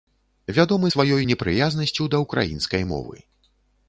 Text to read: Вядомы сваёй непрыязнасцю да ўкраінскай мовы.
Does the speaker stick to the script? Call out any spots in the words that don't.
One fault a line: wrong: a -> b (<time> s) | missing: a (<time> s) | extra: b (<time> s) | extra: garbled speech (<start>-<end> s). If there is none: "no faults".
no faults